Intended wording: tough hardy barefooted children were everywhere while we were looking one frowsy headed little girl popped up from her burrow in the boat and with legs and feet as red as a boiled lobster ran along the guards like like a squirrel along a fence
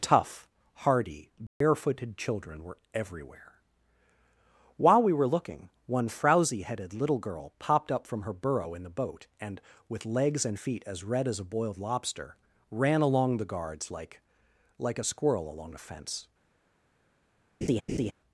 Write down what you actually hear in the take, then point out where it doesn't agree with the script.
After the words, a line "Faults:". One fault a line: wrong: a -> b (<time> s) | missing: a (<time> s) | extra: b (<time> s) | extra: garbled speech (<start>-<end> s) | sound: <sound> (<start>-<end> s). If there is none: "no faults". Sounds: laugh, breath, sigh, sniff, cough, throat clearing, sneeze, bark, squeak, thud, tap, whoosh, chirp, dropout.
tough hardy barefooted children were everywhere while we were looking one frowsy headed little girl popped up from her burrow in the boat and with legs and feet as red as a boiled lobster ran along the guards like like a squirrel along a fence
Faults:
sound: dropout (1.5-1.6 s)
sound: laugh (17.6-18.1 s)